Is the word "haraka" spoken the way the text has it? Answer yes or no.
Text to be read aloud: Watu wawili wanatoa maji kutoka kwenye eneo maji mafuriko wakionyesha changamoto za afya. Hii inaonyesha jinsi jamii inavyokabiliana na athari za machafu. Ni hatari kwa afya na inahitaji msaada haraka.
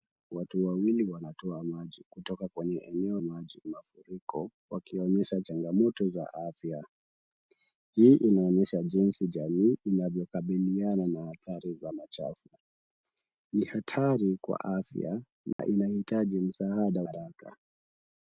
yes